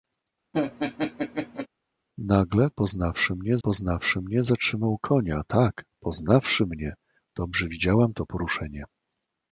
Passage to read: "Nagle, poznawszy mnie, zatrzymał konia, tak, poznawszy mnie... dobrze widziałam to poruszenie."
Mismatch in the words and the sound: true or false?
true